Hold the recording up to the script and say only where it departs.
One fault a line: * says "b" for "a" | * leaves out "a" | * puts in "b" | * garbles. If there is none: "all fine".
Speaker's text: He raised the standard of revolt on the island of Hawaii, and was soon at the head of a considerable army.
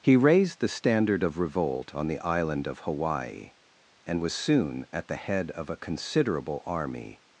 all fine